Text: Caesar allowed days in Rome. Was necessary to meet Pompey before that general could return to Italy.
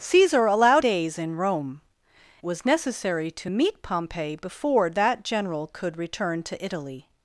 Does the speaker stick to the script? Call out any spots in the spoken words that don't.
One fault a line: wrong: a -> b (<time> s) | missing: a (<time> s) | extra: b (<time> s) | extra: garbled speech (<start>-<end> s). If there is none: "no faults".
no faults